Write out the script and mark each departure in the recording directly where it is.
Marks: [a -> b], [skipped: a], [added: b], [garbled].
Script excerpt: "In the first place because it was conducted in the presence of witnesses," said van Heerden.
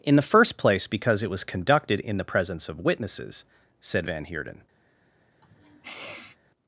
"In the first place because it was conducted in the presence of witnesses," said van Heerden.